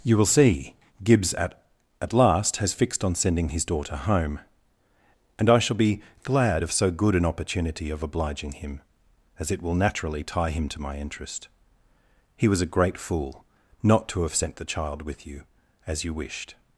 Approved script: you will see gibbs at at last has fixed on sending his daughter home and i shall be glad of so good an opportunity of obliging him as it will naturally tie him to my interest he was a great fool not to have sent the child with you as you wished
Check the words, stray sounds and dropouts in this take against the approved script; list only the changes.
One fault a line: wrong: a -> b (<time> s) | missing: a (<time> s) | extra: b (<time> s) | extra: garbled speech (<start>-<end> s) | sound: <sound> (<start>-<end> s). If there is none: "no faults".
no faults